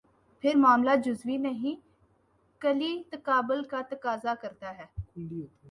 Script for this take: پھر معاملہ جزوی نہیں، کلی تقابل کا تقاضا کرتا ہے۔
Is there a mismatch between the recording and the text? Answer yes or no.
no